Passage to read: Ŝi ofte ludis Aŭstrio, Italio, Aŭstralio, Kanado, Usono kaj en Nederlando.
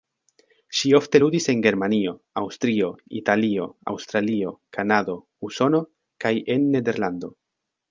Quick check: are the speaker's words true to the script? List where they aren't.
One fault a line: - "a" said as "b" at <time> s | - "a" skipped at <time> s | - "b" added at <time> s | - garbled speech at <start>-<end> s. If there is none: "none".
- "en Germanio" added at 1.5 s